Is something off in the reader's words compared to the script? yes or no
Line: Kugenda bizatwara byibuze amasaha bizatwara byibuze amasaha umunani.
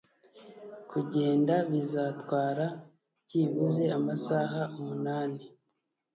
yes